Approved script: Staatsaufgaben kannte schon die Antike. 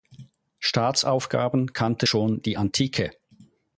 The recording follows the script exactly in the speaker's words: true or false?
true